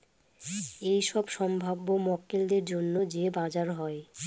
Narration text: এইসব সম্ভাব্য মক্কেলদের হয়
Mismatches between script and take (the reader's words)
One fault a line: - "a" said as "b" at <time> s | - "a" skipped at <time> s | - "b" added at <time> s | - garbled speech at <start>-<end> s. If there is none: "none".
- "জন্য যে বাজার" added at 2.6 s